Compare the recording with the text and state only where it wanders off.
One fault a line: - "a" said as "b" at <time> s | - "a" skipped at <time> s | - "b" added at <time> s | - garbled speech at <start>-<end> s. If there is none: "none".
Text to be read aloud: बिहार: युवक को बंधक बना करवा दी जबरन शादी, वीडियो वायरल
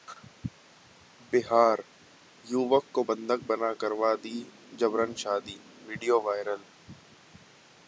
none